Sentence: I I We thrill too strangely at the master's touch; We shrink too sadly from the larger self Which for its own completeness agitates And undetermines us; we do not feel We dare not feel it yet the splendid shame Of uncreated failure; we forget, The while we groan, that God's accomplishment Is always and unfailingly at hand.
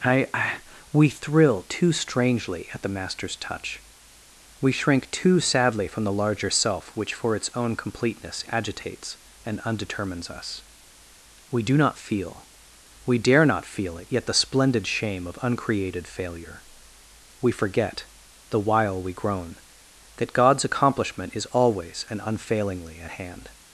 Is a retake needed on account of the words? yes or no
no